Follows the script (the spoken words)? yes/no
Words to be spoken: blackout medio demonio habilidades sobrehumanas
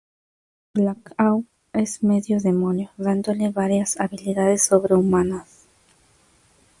no